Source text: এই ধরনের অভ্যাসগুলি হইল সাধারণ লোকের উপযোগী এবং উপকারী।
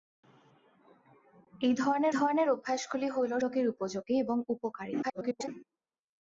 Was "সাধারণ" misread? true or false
true